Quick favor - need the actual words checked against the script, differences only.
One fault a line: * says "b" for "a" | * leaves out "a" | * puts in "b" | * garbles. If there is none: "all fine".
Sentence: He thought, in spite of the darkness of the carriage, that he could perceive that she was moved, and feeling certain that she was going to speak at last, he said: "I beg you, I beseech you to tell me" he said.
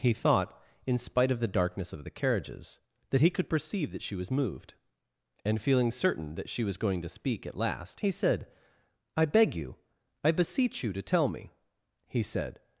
* says "carriages" for "carriage"